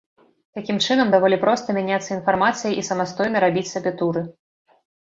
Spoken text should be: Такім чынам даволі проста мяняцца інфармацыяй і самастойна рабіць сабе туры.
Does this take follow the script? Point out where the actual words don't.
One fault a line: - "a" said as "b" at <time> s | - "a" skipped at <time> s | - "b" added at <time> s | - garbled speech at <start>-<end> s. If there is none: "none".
none